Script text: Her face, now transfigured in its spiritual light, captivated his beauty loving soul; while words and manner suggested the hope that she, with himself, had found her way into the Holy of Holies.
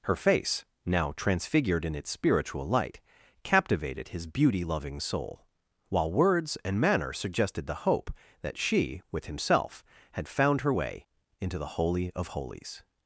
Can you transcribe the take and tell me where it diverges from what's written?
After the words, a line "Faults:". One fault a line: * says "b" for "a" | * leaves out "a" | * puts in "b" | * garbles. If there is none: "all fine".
Her face, now transfigured in its spiritual light, captivated his beauty loving soul; while words and manner suggested the hope that she, with himself, had found her way into the Holy of Holies.
Faults:
all fine